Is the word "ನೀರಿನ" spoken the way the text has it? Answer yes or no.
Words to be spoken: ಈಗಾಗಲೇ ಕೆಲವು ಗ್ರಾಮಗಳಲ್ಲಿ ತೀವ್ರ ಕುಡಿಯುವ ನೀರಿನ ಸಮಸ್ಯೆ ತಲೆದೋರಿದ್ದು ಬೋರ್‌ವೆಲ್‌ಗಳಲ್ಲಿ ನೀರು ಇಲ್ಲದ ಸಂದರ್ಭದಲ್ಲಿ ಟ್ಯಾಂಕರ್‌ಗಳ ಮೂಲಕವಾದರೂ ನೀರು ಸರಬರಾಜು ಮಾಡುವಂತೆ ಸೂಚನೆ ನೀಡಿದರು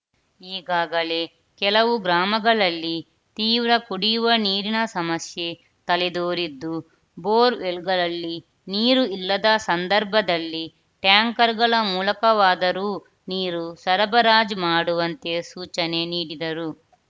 yes